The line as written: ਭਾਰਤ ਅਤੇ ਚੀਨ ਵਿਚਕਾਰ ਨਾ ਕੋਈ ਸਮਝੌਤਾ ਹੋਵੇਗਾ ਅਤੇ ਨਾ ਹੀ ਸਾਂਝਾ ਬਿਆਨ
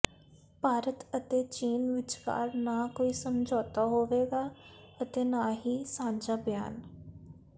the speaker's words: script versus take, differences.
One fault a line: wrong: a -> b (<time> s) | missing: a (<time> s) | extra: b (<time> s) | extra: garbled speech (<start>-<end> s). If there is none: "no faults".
no faults